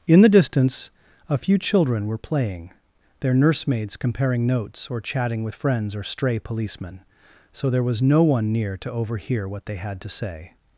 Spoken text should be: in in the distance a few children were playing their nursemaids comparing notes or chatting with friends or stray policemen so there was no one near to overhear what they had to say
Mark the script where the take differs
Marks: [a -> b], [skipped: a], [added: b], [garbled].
in [skipped: in] the distance a few children were playing their nursemaids comparing notes or chatting with friends or stray policemen so there was no one near to overhear what they had to say